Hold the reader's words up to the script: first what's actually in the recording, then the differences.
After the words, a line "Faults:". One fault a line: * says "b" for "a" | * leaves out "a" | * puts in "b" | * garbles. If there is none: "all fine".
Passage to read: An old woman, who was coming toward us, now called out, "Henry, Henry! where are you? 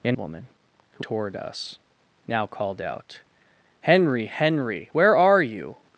An woman, who toward us, now called out, "Henry, Henry! where are you?
Faults:
* leaves out "old"
* leaves out "was coming"